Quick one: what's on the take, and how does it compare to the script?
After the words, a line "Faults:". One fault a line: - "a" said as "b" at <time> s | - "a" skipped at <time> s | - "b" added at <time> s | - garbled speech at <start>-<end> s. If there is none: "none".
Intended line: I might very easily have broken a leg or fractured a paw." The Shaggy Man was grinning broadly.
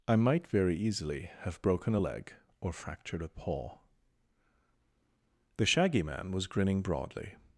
I might very easily have broken a leg or fractured a paw." The Shaggy Man was grinning broadly.
Faults:
none